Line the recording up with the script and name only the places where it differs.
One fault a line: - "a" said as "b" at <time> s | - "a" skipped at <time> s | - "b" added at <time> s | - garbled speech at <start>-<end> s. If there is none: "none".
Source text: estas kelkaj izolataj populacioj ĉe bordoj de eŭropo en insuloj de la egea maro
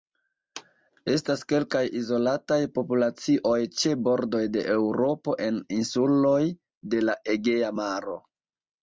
none